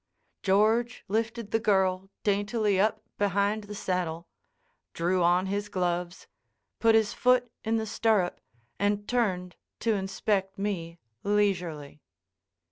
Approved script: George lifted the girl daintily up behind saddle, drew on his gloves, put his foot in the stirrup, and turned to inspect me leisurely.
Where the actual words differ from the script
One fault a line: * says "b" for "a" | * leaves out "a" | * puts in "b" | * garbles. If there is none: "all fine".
* puts in "the"